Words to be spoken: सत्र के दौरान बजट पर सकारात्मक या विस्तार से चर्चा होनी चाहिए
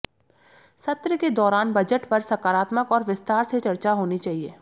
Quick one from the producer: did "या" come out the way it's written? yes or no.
no